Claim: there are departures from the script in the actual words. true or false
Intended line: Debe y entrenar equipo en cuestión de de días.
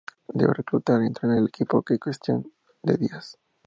true